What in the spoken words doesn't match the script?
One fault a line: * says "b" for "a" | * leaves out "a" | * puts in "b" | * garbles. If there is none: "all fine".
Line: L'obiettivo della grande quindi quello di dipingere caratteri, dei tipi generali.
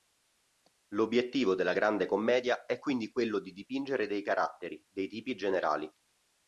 * puts in "commedia è"
* puts in "dei"